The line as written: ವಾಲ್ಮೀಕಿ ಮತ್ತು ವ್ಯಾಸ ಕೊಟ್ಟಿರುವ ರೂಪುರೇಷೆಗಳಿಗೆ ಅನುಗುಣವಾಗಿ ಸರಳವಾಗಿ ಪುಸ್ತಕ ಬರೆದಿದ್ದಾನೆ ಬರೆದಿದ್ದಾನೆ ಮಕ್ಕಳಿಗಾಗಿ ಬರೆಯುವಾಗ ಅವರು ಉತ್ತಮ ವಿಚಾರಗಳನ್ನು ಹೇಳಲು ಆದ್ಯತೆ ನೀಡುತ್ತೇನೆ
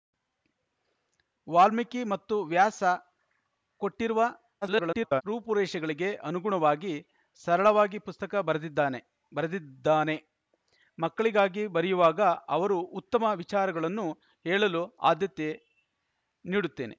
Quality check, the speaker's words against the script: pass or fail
fail